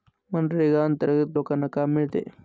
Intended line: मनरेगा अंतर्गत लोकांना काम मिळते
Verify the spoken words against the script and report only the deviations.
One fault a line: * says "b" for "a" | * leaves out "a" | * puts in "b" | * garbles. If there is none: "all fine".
all fine